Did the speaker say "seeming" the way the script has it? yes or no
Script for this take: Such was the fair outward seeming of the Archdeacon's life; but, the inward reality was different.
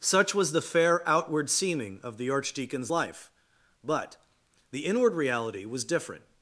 yes